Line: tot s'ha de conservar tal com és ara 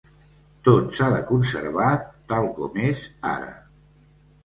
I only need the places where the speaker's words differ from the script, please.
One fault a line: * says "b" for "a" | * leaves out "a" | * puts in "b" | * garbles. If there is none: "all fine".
all fine